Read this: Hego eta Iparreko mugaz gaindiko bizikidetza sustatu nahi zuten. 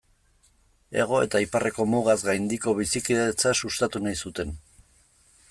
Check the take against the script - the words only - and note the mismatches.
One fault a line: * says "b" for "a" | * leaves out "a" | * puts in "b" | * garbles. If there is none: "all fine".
all fine